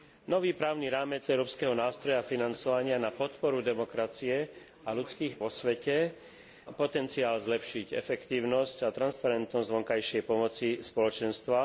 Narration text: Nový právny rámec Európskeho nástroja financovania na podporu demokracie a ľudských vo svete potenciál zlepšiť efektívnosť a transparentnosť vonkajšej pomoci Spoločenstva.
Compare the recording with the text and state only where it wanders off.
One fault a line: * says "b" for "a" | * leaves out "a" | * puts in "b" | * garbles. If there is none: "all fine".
all fine